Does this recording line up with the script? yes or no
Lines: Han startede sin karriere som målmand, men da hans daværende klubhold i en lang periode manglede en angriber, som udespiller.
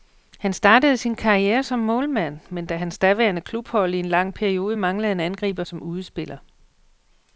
yes